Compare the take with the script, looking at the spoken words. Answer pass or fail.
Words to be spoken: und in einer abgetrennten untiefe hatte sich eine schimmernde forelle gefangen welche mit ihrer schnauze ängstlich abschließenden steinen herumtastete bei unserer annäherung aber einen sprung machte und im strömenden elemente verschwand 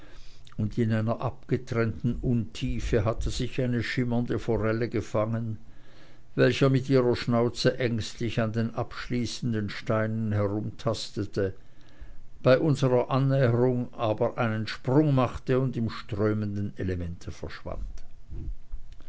fail